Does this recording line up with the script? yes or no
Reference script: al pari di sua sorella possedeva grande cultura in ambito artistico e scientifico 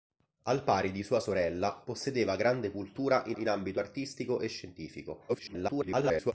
no